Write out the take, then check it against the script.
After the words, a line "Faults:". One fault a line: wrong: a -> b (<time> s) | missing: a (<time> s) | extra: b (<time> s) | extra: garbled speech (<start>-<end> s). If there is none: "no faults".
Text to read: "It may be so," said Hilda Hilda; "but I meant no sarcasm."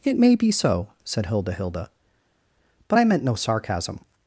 "It may be so," said Hilda Hilda; "but I meant no sarcasm."
Faults:
no faults